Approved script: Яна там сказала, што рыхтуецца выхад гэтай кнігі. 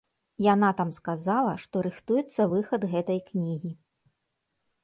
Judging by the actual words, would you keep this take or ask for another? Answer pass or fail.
pass